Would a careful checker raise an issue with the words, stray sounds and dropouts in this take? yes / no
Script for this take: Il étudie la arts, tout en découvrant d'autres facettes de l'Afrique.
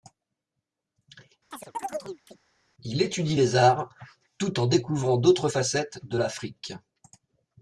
yes